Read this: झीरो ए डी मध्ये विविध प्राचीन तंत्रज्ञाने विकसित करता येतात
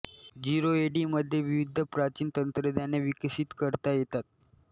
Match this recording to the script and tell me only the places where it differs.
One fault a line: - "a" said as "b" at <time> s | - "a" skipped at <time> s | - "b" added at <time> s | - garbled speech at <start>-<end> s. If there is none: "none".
none